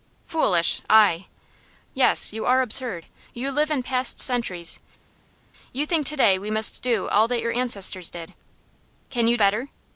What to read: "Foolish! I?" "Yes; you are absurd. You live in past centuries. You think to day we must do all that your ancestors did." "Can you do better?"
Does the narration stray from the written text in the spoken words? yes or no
yes